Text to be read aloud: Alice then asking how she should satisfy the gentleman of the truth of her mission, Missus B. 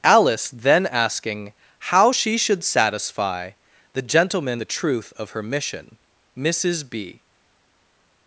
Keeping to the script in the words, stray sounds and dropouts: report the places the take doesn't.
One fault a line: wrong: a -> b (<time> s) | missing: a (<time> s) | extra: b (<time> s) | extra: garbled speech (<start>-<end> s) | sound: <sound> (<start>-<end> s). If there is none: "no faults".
missing: of (4.6 s)